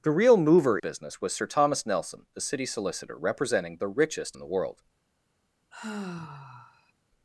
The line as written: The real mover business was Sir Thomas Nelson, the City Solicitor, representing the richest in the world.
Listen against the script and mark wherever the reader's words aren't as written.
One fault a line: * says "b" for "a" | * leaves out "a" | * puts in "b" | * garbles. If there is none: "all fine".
all fine